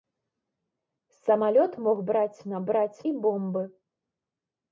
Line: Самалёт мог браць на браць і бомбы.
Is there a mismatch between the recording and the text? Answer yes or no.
no